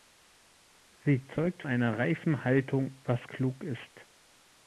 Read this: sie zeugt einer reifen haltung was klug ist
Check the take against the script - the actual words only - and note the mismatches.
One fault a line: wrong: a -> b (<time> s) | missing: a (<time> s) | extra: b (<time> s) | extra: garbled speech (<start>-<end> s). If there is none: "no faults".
no faults